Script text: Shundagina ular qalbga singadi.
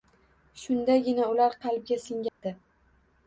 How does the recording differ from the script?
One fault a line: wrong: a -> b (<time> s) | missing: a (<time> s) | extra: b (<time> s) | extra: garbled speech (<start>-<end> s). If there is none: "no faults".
no faults